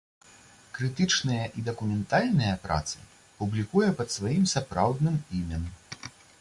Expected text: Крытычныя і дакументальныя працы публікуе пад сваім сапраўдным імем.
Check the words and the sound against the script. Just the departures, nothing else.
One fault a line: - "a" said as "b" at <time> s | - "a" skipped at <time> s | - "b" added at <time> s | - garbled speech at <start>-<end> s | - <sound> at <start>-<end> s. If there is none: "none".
none